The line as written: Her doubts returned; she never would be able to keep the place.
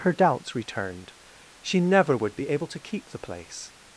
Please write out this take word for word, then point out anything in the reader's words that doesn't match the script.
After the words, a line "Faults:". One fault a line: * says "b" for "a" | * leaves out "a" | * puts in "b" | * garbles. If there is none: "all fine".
Her doubts returned; she never would be able to keep the place.
Faults:
all fine